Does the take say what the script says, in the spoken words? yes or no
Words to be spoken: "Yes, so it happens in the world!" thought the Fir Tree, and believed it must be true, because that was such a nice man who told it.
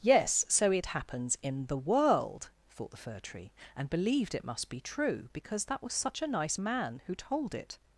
yes